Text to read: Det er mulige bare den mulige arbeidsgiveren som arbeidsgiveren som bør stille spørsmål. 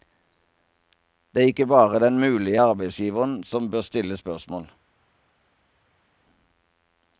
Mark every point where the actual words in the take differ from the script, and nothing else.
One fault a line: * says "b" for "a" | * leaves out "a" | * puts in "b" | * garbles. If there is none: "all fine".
* says "ikke" for "mulige"
* leaves out "arbeidsgiveren som"